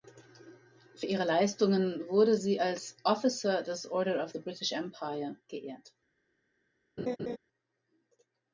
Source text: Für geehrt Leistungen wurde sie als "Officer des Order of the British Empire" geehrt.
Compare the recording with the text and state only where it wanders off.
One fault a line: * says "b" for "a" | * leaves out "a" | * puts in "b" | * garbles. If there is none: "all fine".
* says "ihre" for "geehrt"